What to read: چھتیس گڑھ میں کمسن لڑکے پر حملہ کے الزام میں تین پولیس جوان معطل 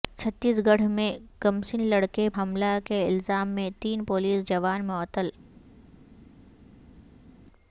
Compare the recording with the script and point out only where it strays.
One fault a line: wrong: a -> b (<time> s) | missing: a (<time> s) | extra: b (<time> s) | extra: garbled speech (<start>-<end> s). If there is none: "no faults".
missing: پر (2.3 s)